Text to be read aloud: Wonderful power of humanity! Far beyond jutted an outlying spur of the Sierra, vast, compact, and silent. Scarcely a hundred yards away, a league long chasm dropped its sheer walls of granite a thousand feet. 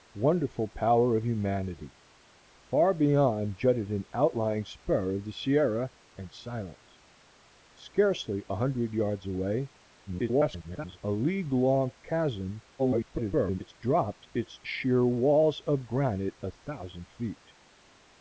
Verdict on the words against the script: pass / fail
fail